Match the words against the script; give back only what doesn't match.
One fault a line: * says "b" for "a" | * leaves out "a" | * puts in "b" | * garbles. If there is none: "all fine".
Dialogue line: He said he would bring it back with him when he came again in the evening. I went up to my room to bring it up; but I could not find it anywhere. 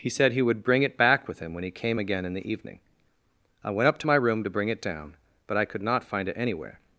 * says "down" for "up"